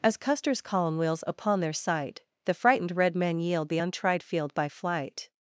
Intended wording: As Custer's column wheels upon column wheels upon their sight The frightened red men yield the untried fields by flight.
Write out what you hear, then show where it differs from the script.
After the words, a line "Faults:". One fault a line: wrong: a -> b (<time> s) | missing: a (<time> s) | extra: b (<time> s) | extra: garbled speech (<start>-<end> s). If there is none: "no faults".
As Custer's column wheels upon their sight The frightened red men yield the untried field by flight.
Faults:
missing: column wheels upon (1.6 s)
wrong: fields -> field (4.2 s)